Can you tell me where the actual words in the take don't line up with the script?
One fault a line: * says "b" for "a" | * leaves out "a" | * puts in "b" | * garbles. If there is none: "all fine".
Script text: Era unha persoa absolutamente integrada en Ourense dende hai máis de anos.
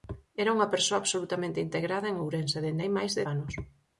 all fine